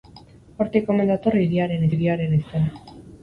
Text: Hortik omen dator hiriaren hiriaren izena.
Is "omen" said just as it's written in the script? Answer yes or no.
yes